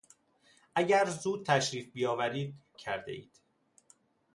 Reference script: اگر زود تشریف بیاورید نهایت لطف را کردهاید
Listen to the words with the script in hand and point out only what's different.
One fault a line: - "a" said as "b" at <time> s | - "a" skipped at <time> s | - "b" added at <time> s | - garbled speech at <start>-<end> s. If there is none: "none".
- "نهایت لطف را" skipped at 2.5 s